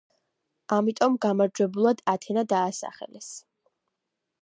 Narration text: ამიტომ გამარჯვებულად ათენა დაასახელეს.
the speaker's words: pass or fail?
pass